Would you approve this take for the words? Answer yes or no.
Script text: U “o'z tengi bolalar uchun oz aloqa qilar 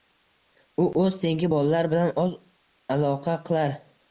no